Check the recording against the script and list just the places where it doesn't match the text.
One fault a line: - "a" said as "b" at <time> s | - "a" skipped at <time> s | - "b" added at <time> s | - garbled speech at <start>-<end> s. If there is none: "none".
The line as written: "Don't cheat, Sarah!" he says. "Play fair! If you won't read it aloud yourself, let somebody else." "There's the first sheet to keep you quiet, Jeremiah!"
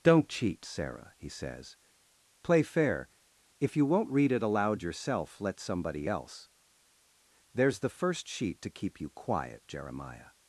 none